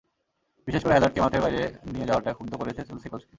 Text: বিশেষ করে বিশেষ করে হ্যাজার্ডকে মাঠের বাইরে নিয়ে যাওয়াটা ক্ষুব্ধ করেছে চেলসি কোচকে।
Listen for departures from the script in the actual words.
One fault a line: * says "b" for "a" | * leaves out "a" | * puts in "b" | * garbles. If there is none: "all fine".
* leaves out "বিশেষ করে"